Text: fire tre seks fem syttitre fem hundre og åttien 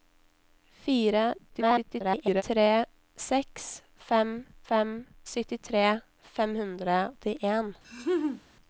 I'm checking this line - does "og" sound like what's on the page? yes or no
no